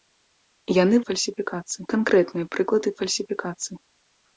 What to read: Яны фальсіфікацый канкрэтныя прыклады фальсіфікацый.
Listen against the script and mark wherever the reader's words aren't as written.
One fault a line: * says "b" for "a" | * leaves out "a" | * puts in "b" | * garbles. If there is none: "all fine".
all fine